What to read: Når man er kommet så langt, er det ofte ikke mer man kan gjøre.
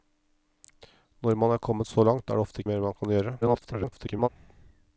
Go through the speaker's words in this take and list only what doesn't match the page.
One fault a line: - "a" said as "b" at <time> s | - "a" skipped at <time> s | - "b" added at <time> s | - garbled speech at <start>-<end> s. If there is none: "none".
- "ikke" skipped at 2.6 s
- garbled speech at 3.4-4.3 s